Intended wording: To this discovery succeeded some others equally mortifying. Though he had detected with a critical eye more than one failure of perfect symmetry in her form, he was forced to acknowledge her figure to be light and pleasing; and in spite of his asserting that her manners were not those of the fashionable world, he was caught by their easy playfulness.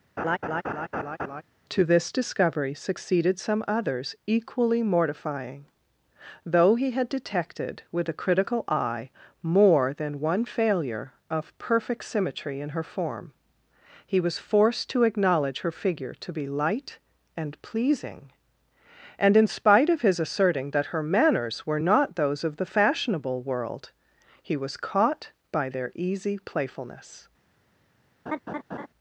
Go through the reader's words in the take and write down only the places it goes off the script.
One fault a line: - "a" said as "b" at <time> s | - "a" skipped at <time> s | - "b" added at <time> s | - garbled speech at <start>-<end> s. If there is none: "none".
none